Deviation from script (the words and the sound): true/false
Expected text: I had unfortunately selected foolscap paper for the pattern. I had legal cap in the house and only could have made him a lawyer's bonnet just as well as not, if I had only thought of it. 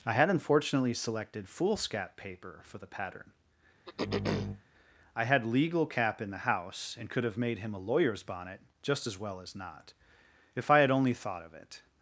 true